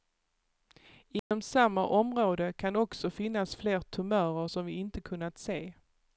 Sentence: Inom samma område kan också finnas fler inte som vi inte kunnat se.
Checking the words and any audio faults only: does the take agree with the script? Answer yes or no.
no